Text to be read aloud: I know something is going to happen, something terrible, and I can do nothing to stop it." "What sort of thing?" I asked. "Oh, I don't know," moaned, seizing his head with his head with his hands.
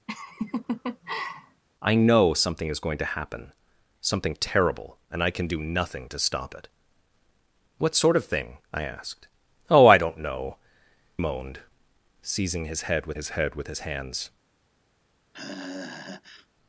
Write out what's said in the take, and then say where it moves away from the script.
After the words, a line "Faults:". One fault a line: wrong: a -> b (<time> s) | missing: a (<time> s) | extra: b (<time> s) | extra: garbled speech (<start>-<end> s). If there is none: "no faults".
I know something is going to happen, something terrible, and I can do nothing to stop it." "What sort of thing?" I asked. "Oh, I don't know," moaned, seizing his head with his head with his hands.
Faults:
no faults